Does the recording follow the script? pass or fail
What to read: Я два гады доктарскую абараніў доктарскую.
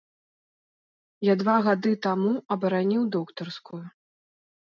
fail